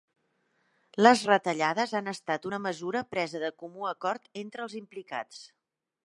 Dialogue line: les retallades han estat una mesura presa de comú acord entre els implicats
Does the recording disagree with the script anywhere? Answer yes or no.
no